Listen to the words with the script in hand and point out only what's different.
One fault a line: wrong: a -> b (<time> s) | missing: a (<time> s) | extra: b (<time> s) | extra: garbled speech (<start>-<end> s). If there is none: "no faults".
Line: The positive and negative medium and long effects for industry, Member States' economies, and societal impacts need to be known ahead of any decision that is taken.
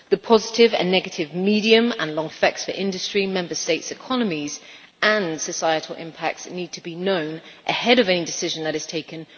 no faults